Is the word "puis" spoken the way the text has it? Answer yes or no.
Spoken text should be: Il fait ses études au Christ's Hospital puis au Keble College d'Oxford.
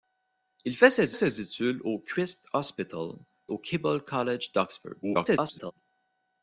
no